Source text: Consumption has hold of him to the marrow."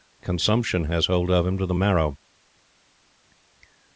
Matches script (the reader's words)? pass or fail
pass